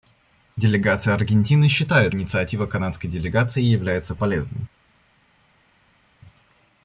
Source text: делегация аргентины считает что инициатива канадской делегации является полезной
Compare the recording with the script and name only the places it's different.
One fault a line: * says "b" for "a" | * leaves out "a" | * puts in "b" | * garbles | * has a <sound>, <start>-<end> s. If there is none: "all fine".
* leaves out "что"